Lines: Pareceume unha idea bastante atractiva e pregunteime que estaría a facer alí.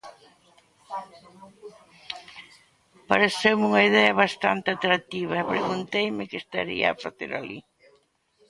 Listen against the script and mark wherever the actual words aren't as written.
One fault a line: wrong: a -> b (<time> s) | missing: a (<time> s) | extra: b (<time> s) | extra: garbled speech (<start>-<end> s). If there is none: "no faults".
no faults